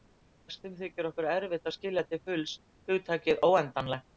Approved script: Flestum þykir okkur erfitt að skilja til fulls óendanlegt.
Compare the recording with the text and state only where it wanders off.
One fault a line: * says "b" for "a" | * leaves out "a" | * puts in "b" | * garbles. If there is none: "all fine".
* puts in "hugtakið"